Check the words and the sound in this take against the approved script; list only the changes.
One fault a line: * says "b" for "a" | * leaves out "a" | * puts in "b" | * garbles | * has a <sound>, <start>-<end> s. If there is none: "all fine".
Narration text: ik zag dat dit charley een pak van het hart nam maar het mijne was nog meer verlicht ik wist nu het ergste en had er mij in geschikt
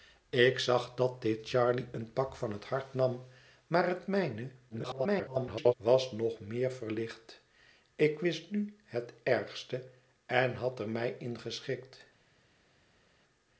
* garbles